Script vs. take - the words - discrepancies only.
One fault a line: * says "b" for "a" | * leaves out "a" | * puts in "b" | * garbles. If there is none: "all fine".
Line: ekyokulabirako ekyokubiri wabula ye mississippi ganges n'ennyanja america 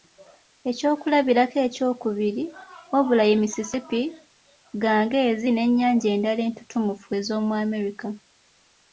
* puts in "endala entutumufu ez'omu"